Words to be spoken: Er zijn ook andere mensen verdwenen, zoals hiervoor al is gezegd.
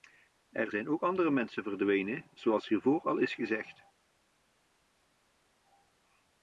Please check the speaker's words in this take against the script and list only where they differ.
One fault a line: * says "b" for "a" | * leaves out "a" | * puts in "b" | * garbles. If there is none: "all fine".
all fine